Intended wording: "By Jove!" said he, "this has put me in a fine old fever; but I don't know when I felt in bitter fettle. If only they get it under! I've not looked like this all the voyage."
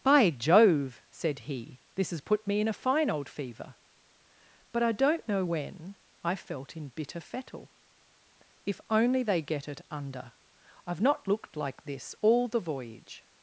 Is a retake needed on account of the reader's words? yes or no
no